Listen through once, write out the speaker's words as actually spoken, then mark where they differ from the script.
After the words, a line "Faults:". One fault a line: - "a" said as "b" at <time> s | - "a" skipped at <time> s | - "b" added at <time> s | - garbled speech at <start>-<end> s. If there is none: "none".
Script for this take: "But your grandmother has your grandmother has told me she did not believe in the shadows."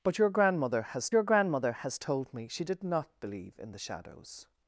"But your grandmother has your grandmother has told me she did not believe in the shadows."
Faults:
none